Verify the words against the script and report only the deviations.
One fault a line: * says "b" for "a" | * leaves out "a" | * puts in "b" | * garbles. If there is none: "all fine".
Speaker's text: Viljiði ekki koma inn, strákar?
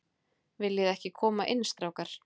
all fine